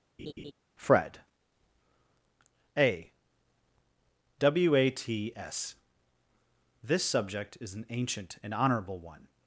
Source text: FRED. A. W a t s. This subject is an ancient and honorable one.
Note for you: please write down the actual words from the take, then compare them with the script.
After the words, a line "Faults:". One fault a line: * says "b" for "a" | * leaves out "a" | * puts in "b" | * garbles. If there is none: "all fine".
FRED. A. W a t s. This subject is an ancient and honorable one.
Faults:
all fine